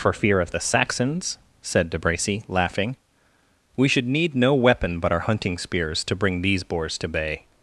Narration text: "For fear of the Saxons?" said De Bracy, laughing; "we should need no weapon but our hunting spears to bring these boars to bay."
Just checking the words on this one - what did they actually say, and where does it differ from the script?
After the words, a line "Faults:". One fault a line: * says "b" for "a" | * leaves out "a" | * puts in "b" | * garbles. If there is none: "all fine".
"For fear of the Saxons?" said De Bracy, laughing; "we should need no weapon but our hunting spears to bring these boars to bay."
Faults:
all fine